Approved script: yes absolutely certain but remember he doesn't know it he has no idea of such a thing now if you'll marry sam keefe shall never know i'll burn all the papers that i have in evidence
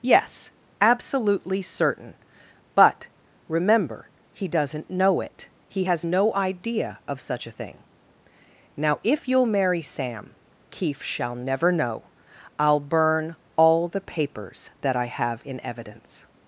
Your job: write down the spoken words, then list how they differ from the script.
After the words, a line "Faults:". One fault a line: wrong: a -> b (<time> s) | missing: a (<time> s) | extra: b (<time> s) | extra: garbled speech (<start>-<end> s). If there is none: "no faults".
yes absolutely certain but remember he doesn't know it he has no idea of such a thing now if you'll marry sam keefe shall never know i'll burn all the papers that i have in evidence
Faults:
no faults